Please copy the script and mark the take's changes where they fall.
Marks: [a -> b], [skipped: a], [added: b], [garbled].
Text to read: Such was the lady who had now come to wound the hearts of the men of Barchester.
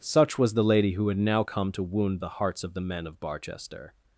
Such was the lady who had now come to wound the hearts of the men of Barchester.